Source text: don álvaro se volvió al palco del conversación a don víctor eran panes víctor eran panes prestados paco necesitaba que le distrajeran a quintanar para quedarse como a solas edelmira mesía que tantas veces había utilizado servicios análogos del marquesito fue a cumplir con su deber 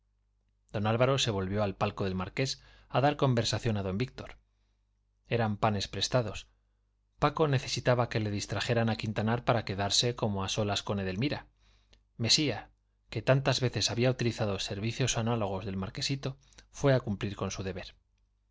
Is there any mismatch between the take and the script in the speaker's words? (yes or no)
yes